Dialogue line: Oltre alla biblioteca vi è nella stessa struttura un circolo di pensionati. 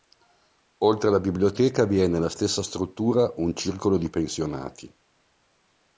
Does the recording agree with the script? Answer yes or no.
yes